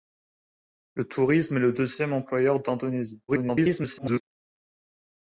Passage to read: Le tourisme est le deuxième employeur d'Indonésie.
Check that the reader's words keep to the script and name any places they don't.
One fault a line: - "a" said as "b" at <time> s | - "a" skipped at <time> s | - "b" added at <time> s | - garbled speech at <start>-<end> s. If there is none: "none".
- garbled speech at 3.3-4.2 s